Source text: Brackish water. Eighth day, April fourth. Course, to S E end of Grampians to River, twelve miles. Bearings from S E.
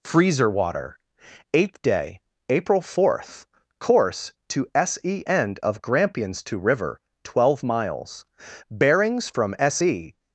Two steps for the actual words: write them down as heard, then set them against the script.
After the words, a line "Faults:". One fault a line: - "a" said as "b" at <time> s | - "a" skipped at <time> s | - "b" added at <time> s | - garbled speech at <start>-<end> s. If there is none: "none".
Freezer water. Eighth day, April fourth. Course, to S E end of Grampians to River, twelve miles. Bearings from S E.
Faults:
- "Brackish" said as "Freezer" at 0.0 s